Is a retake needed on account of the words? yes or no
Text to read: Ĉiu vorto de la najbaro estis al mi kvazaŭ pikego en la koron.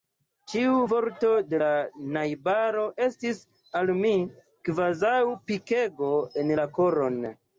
no